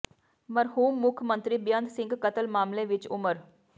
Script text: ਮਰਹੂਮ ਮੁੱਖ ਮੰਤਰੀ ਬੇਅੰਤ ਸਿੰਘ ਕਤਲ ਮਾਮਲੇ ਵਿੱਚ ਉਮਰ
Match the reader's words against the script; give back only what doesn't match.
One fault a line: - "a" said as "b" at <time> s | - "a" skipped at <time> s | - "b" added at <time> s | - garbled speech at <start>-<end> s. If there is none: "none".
none